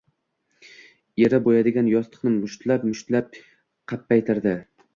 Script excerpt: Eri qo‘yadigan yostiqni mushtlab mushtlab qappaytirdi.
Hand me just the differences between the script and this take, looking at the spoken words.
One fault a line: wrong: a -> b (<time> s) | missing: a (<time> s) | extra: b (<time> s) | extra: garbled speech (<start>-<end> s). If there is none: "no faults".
no faults